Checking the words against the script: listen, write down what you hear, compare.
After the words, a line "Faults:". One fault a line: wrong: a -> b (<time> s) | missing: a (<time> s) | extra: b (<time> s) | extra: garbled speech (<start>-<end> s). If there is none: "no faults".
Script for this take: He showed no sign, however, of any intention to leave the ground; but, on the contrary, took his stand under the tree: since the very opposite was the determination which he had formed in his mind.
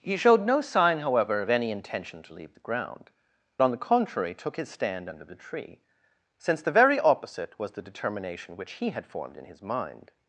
He showed no sign, however, of any intention to leave the ground; on the contrary, took his stand under the tree: since the very opposite was the determination which he had formed in his mind.
Faults:
missing: but (3.1 s)